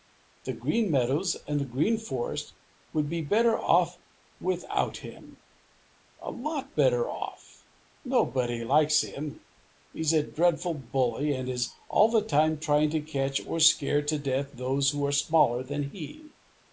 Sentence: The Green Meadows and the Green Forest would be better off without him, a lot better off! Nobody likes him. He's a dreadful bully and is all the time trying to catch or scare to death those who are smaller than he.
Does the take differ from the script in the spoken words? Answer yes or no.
no